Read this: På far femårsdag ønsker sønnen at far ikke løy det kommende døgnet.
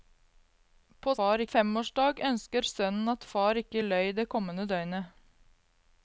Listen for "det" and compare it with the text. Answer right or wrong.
right